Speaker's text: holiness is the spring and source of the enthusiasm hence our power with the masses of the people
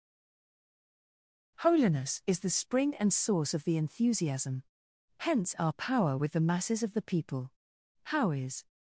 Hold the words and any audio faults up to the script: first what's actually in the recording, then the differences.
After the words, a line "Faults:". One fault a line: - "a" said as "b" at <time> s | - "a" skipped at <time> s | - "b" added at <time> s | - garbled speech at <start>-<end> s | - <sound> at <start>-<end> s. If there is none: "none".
holiness is the spring and source of the enthusiasm hence our power with the masses of the people how is
Faults:
- "how is" added at 8.0 s